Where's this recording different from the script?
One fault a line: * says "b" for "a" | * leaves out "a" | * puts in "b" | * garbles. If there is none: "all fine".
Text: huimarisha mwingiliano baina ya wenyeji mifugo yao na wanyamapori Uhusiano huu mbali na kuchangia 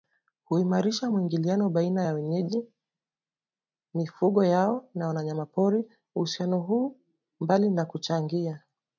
all fine